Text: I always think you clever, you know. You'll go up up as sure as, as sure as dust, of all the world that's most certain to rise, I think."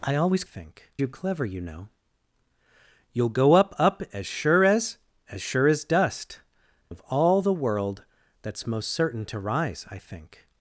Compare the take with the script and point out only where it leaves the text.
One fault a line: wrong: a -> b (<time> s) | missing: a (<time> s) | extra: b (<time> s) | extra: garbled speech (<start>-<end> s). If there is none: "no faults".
no faults